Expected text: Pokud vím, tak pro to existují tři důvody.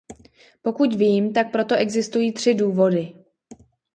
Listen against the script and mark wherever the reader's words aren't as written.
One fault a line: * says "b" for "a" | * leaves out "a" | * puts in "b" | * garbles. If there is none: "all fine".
all fine